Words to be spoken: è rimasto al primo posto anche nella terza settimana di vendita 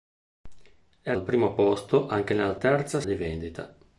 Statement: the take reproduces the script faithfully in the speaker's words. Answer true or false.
false